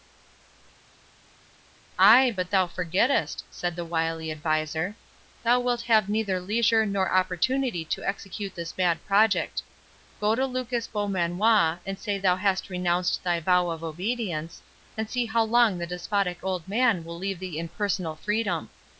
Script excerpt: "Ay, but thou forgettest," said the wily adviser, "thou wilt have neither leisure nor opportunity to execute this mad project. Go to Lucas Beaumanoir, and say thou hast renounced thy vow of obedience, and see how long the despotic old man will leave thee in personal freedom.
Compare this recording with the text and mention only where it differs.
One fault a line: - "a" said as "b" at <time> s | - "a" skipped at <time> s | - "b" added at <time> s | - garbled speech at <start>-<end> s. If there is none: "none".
none